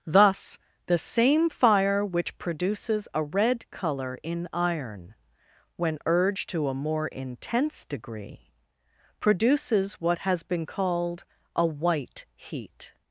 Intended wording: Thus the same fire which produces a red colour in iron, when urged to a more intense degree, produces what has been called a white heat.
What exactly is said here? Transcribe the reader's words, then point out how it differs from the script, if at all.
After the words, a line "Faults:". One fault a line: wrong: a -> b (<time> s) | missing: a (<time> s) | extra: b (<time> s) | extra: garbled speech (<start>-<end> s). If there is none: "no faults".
Thus the same fire which produces a red colour in iron, when urged to a more intense degree, produces what has been called a white heat.
Faults:
no faults